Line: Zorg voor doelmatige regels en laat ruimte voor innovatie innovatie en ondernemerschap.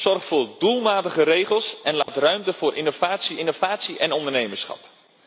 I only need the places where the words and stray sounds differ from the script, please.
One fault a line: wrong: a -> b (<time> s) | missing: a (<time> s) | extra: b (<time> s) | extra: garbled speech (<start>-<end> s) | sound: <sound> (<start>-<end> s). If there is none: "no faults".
sound: dropout (2.0-2.1 s)